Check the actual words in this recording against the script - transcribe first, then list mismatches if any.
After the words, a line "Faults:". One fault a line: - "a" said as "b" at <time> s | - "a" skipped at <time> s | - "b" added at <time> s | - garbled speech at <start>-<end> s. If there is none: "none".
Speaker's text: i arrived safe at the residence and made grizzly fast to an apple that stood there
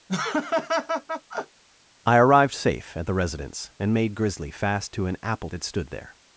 i arrived safe at the residence and made grizzly fast to an apple that stood there
Faults:
none